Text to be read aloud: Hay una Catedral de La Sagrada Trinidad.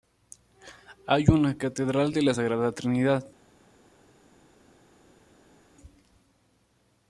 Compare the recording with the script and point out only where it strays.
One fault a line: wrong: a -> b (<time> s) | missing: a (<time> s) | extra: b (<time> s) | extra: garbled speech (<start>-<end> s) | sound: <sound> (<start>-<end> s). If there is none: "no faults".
no faults